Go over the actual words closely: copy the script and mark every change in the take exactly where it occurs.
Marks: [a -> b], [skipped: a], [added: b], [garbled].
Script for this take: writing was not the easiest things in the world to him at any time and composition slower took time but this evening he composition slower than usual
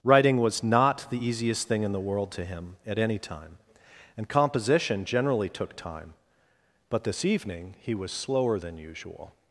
writing was not the easiest [things -> thing] in the world to him at any time and composition [slower -> generally] took time but this evening he [composition -> was] slower than usual